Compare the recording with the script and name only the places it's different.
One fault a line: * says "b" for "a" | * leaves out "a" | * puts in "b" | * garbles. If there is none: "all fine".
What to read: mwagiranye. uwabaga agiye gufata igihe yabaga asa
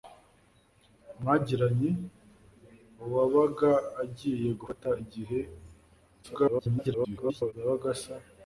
* garbles